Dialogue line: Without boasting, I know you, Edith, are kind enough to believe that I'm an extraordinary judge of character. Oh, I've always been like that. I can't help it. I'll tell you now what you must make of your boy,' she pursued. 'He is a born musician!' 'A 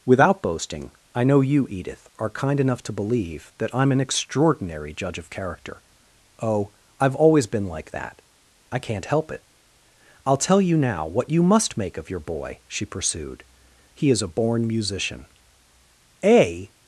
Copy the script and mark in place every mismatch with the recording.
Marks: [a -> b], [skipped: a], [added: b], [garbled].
Without boasting, I know you, Edith, are kind enough to believe that I'm an extraordinary judge of character. Oh, I've always been like that. I can't help it. I'll tell you now what you must make of your boy,' she pursued. 'He is a born musician!' 'A